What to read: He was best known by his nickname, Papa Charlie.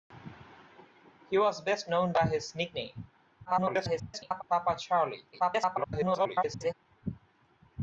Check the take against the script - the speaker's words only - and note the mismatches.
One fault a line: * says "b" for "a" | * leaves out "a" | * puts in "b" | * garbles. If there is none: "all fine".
* garbles
* garbles